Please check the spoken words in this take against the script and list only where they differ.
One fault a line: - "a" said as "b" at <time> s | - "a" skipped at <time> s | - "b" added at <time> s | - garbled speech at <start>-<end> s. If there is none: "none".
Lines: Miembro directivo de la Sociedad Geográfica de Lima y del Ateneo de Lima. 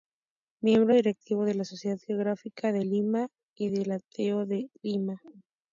none